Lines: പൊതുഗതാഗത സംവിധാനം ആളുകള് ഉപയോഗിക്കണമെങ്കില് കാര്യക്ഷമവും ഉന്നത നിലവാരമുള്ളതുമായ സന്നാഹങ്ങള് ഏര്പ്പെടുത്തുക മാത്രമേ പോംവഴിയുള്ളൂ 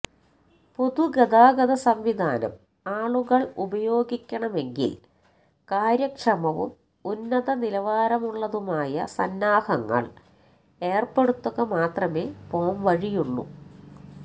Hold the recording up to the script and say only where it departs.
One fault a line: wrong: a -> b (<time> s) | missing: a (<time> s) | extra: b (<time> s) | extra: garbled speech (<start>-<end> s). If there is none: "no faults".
no faults